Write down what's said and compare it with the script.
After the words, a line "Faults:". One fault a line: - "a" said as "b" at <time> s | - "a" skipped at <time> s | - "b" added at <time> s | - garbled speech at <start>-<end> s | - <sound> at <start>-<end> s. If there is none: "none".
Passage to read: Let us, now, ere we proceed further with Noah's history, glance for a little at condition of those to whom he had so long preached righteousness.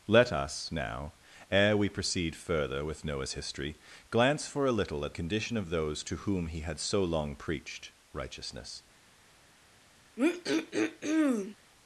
Let us, now, ere we proceed further with Noah's history, glance for a little at condition of those to whom he had so long preached righteousness.
Faults:
- throat clearing at 10.2-11.6 s